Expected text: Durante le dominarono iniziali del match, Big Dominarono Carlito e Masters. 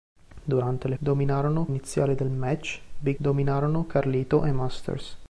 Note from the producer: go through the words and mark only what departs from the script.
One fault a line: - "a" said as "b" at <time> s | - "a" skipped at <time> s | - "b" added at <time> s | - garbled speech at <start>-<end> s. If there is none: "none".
none